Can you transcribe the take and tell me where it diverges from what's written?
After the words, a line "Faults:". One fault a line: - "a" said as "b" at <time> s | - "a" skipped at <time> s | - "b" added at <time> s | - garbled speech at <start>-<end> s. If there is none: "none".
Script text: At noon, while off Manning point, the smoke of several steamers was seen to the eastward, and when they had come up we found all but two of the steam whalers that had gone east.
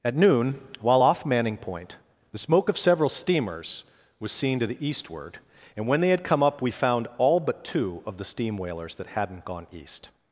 At noon, while off Manning point, the smoke of several steamers was seen to the eastward, and when they had come up we found all but two of the steam whalers that hadn't gone east.
Faults:
- "had" said as "hadn't" at 9.1 s